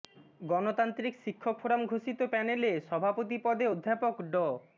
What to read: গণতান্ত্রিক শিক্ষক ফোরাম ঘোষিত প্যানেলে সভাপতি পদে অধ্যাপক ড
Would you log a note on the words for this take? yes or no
no